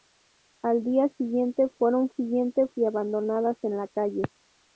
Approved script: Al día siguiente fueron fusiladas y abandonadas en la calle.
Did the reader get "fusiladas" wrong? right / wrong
wrong